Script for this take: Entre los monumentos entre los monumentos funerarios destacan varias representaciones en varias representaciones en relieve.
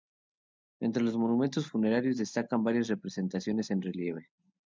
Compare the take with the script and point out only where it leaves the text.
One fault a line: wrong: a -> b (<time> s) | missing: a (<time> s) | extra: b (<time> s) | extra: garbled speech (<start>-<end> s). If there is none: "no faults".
missing: entre los monumentos (1.7 s)
missing: varias representaciones en (3.8 s)